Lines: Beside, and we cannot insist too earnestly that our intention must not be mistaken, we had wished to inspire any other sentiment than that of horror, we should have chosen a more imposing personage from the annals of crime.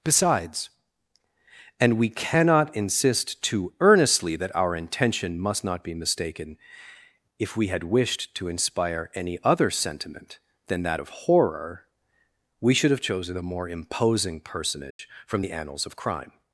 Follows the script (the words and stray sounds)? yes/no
no